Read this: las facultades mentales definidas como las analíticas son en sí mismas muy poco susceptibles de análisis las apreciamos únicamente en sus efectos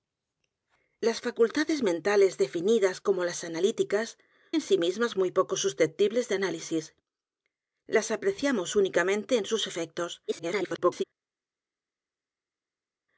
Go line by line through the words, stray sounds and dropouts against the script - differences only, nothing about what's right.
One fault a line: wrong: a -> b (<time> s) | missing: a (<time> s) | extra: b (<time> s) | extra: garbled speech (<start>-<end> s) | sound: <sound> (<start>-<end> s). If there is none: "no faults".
missing: son (4.2 s)
extra: garbled speech (10.3-11.0 s)